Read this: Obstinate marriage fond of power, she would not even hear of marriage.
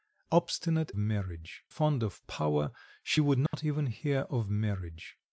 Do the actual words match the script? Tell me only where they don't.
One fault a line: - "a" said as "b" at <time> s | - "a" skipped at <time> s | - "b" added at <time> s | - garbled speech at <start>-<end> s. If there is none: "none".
none